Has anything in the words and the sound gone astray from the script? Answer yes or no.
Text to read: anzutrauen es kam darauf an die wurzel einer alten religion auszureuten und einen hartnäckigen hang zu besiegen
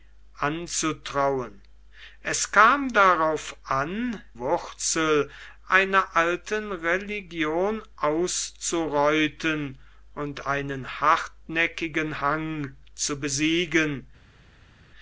yes